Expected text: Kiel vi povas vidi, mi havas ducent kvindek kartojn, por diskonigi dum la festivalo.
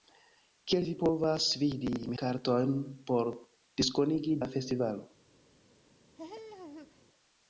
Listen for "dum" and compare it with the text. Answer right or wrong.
wrong